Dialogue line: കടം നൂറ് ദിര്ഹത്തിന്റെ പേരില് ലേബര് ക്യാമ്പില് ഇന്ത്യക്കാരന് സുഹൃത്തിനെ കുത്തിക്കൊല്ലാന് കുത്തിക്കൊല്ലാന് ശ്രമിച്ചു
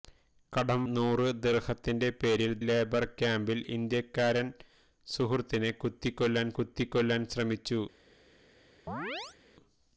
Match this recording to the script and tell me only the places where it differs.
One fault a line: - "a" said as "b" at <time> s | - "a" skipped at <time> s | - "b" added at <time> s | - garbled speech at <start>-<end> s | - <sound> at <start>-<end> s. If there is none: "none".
- chirp at 8.9-9.4 s